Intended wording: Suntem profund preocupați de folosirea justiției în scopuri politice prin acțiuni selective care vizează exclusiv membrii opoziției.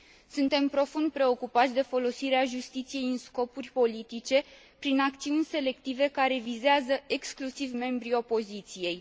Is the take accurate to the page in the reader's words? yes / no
yes